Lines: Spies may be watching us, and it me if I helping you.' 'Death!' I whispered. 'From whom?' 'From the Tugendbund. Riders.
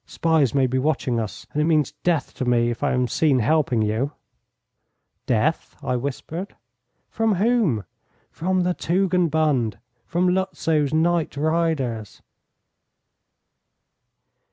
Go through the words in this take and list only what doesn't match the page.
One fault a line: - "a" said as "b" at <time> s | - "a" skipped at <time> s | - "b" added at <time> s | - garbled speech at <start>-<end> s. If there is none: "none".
- "means death to" added at 1.6 s
- "am seen" added at 2.9 s
- "From Lutzow's night" added at 10.1 s